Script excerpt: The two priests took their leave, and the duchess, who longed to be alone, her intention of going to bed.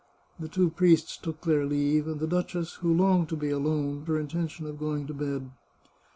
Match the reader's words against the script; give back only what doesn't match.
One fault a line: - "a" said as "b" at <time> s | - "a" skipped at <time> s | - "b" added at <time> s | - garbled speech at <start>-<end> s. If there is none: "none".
none